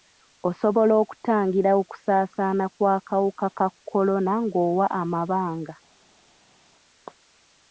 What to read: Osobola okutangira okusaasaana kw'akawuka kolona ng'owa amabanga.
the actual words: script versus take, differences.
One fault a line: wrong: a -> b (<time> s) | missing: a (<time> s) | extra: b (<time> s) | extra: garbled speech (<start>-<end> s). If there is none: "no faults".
extra: ka (3.6 s)